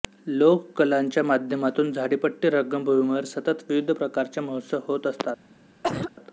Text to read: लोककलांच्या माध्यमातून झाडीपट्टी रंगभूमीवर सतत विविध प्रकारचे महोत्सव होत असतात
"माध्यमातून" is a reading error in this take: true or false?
false